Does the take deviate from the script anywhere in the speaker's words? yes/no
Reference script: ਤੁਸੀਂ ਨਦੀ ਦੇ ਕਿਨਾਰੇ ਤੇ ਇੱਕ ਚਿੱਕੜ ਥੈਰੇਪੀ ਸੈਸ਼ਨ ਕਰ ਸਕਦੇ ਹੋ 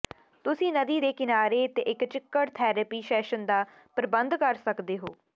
yes